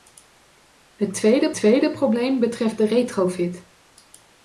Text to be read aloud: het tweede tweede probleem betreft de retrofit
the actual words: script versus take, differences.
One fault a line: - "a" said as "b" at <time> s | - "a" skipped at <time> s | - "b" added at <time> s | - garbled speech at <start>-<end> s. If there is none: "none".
none